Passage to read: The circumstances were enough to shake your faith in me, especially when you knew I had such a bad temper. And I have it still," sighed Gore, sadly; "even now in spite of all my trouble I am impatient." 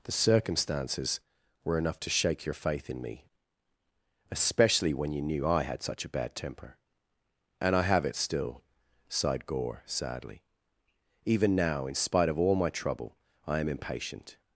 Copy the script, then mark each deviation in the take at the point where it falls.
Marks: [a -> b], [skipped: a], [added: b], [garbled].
The circumstances were enough to shake your faith in me, especially when you knew I had such a bad temper. And I have it still," sighed Gore, sadly; "even now in spite of all my trouble I am impatient."